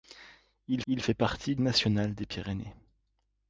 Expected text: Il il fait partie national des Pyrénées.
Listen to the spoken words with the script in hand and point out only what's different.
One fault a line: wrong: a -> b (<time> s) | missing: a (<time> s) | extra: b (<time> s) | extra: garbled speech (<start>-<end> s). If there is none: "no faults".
no faults